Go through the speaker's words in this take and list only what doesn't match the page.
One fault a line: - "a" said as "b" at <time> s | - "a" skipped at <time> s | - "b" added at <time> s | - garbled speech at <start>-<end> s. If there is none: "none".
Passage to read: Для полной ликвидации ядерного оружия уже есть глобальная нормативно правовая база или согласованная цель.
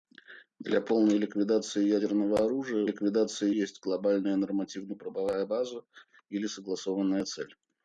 - "уже" said as "ликвидации" at 2.8 s